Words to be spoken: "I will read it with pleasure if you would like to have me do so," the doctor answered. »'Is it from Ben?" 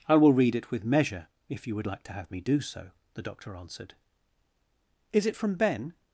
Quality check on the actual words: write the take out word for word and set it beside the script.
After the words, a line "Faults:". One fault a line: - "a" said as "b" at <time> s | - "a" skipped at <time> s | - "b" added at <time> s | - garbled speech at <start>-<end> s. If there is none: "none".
"I will read it with measure if you would like to have me do so," the doctor answered. »'Is it from Ben?"
Faults:
- "pleasure" said as "measure" at 0.8 s